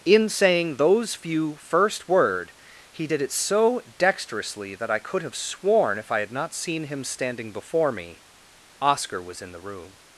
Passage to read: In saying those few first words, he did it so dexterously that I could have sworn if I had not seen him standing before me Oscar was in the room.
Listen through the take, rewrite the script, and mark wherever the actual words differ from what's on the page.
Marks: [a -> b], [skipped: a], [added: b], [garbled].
In saying those few first [words, -> word] he did it so dexterously that I could have sworn if I had not seen him standing before me Oscar was in the room.